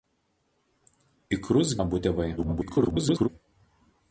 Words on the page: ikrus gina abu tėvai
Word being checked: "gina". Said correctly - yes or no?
no